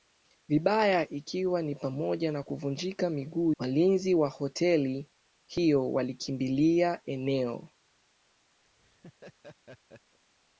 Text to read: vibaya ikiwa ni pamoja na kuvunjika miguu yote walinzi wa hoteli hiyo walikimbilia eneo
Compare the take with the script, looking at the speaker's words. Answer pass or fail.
fail